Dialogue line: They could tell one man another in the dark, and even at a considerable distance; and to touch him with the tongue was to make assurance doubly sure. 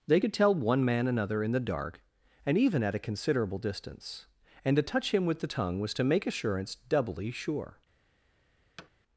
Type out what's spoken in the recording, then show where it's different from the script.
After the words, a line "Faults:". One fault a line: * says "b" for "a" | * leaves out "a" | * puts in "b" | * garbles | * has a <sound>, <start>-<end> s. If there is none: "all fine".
They could tell one man another in the dark, and even at a considerable distance; and to touch him with the tongue was to make assurance doubly sure.
Faults:
* has a thud, 8.8-8.9 s